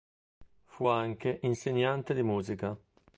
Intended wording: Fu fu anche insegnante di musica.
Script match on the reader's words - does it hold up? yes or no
no